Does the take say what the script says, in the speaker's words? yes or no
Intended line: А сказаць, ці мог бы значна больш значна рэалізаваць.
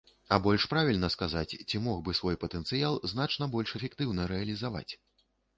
no